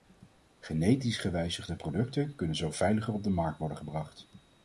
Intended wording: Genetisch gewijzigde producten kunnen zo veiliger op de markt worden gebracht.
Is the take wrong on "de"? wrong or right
right